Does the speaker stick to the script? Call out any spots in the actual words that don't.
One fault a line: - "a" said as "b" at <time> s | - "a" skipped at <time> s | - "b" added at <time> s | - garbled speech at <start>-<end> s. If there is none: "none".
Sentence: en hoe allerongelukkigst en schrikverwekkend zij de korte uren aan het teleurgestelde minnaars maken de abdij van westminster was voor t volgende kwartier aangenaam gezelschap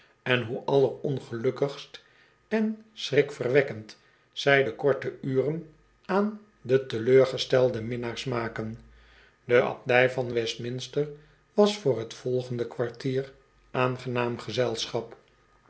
- "het" said as "de" at 6.6 s